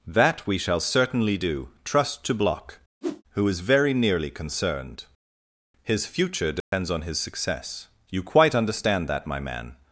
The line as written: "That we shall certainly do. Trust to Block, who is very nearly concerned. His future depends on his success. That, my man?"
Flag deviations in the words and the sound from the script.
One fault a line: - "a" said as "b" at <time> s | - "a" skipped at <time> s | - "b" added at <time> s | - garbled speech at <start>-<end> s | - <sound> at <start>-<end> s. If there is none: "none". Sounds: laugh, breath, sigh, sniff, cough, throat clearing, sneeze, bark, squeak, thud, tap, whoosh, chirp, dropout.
- whoosh at 3.0-3.2 s
- dropout at 6.6-6.7 s
- "You quite understand" added at 8.1 s